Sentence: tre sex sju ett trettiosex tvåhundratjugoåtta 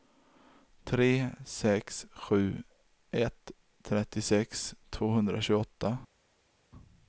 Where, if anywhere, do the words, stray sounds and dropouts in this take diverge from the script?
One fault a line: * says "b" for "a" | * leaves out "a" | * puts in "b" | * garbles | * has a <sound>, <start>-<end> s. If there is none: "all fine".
all fine